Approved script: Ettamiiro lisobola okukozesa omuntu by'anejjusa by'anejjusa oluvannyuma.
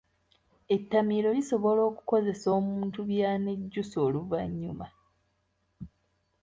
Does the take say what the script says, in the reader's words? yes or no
no